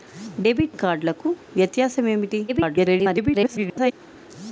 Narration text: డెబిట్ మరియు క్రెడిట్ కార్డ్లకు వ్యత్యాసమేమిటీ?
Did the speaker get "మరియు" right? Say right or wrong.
wrong